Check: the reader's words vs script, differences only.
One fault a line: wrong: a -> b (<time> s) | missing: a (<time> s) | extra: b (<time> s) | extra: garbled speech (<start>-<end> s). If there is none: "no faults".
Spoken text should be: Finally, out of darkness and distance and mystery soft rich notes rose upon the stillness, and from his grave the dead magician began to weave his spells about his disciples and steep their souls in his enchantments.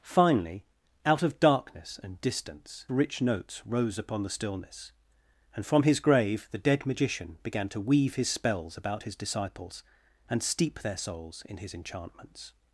missing: and mystery soft (2.9 s)